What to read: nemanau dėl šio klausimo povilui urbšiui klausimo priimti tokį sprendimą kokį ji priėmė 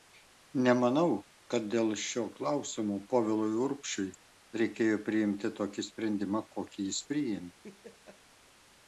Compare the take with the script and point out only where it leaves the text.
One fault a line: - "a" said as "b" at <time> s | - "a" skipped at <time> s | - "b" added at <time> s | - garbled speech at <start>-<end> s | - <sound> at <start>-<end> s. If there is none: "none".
- "kad" added at 1.5 s
- "klausimo" said as "reikėjo" at 4.6 s
- "ji" said as "jis" at 6.9 s
- laugh at 7.6-8.2 s